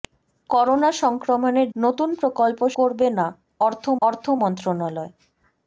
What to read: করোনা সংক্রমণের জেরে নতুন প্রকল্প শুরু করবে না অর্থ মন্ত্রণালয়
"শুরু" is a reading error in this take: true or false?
true